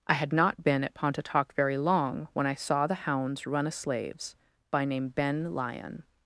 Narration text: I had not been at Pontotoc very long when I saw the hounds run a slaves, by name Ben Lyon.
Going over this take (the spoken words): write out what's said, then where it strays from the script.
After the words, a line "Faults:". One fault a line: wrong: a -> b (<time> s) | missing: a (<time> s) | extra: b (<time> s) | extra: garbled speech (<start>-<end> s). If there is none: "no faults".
I had not been at Pontotoc very long when I saw the hounds run a slaves, by name Ben Lyon.
Faults:
no faults